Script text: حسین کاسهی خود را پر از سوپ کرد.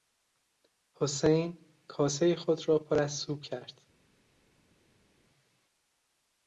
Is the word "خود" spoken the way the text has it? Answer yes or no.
yes